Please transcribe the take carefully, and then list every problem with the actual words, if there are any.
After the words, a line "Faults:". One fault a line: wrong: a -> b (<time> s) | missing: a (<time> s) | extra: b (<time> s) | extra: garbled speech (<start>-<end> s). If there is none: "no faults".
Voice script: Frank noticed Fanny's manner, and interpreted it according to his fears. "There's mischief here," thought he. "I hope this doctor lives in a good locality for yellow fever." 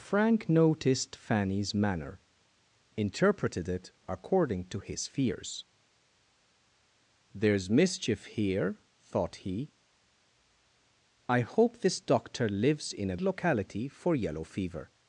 Frank noticed Fanny's manner, interpreted it according to his fears. "There's mischief here," thought he. "I hope this doctor lives in a locality for yellow fever."
Faults:
missing: and (2.2 s)
missing: good (13.2 s)